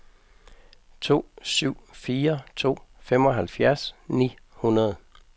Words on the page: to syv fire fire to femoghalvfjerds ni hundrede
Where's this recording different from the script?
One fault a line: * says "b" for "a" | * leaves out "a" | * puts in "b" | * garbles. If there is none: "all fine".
* leaves out "fire"